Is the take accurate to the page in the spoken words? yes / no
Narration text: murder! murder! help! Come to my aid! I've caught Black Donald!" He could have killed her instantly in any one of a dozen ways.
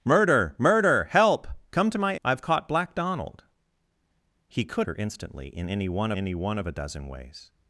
no